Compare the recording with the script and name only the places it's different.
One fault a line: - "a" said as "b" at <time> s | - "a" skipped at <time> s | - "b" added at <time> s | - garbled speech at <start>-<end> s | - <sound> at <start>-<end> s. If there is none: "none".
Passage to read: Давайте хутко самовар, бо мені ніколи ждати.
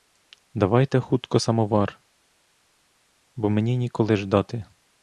none